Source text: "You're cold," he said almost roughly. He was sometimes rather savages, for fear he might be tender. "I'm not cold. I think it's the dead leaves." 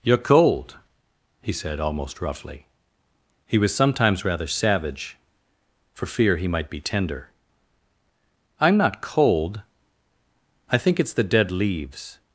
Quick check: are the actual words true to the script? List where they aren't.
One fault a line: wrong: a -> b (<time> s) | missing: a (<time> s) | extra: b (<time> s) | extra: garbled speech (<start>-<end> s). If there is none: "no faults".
wrong: savages -> savage (4.5 s)